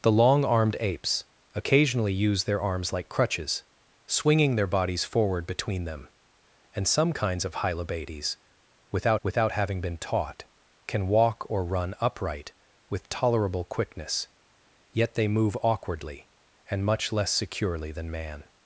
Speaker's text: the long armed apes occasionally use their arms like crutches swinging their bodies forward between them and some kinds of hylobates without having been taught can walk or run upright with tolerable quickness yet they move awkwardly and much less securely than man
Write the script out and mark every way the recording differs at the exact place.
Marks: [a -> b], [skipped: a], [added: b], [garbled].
the long armed apes occasionally use their arms like crutches swinging their bodies forward between them and some kinds of hylobates without [added: without] having been taught can walk or run upright with tolerable quickness yet they move awkwardly and much less securely than man